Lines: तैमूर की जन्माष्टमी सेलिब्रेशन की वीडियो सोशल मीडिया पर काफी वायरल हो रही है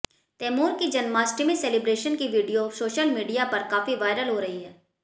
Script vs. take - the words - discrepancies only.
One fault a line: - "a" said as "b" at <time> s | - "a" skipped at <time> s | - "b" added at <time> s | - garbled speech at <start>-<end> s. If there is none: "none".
none